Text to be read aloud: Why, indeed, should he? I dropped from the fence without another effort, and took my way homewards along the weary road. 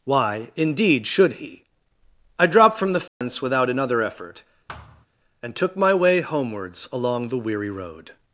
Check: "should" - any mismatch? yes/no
no